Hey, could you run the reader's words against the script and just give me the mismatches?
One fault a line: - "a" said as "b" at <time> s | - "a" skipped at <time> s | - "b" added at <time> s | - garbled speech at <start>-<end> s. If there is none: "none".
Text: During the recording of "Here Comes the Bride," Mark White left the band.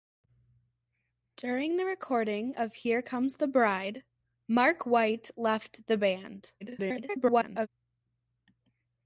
- garbled speech at 6.6-7.7 s